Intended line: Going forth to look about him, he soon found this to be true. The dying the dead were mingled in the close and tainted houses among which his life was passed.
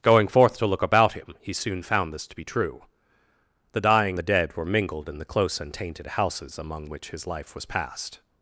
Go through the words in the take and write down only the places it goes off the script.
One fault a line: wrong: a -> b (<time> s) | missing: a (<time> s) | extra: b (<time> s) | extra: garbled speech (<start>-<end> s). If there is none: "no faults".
no faults